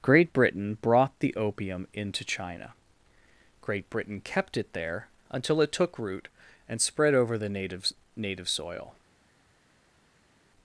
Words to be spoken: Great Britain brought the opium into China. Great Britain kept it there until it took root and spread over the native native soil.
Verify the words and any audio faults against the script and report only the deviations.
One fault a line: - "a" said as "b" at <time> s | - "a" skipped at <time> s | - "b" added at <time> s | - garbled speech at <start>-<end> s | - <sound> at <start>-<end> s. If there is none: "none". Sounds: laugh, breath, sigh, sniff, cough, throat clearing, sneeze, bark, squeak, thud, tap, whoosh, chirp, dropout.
none